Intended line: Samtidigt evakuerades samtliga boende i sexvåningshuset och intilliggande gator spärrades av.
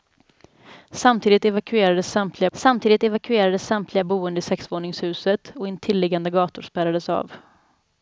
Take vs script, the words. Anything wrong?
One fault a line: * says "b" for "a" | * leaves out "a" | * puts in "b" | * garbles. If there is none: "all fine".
* puts in "samtidigt evakuerades samtliga"